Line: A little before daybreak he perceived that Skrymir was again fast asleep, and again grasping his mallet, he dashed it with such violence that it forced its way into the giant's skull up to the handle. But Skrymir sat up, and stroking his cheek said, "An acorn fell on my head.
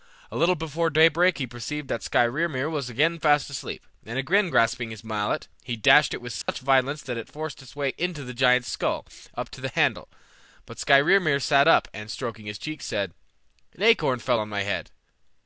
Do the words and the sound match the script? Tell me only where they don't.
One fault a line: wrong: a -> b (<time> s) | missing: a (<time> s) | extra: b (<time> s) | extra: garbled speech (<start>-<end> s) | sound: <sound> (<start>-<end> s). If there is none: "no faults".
sound: dropout (6.4-6.5 s)